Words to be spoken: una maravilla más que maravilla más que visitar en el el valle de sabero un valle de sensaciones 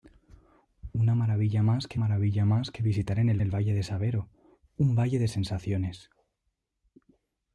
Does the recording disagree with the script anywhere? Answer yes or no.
no